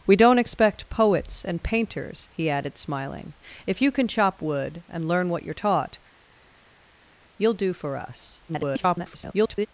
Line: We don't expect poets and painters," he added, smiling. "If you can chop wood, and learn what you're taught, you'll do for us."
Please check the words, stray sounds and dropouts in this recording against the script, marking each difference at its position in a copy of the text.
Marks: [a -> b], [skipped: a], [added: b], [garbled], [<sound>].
We don't expect poets and painters," he added, smiling. "If you can chop wood, and learn what you're taught, you'll do for us." [garbled]